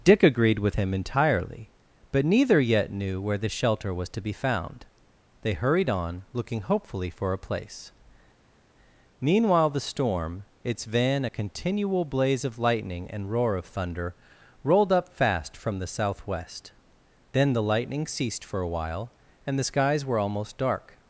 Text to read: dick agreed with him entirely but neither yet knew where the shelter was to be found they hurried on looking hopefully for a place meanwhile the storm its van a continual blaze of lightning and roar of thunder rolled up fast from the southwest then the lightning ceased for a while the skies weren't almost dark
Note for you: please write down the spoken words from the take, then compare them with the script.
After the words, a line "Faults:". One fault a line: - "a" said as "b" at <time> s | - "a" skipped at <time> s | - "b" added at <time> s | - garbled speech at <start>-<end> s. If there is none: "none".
dick agreed with him entirely but neither yet knew where the shelter was to be found they hurried on looking hopefully for a place meanwhile the storm its van a continual blaze of lightning and roar of thunder rolled up fast from the southwest then the lightning ceased for a while and the skies were almost dark
Faults:
- "and" added at 19.5 s
- "weren't" said as "were" at 20.0 s